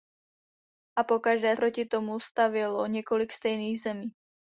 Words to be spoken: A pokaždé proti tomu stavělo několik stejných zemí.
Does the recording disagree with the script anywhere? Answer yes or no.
no